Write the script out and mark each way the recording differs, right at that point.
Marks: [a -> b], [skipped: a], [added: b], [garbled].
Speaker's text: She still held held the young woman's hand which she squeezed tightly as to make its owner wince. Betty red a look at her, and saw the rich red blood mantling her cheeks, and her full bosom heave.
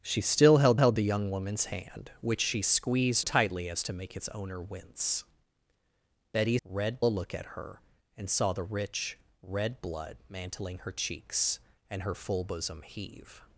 She still held held the young woman's hand which she squeezed tightly as to make its owner wince. Betty red a look at her, and saw the rich red blood mantling her cheeks, and her full bosom heave.